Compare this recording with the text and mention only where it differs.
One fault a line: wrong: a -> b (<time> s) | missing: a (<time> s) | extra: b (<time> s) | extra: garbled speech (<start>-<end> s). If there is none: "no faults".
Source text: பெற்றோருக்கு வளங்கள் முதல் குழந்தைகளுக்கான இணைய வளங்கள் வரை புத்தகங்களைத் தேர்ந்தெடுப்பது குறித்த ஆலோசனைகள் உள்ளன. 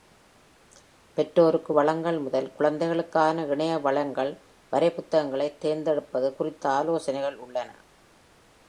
no faults